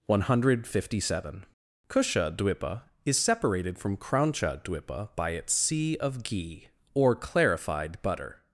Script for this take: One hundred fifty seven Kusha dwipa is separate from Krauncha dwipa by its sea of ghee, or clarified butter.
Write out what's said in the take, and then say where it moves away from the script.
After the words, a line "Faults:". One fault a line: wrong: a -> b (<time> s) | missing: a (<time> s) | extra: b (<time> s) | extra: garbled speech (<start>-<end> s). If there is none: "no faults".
One hundred fifty seven Kusha dwipa is separated from Krauncha dwipa by its sea of ghee, or clarified butter.
Faults:
wrong: separate -> separated (3.2 s)